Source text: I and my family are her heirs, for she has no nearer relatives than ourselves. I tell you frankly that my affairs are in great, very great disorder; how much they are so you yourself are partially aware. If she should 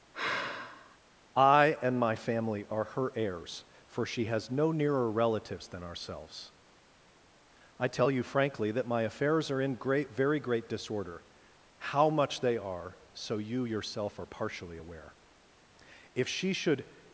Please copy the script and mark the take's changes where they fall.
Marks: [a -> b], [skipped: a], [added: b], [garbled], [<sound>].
[sigh] I and my family are her heirs, for she has no nearer relatives than ourselves. I tell you frankly that my affairs are in great, very great disorder; how much they are so you yourself are partially aware. If she should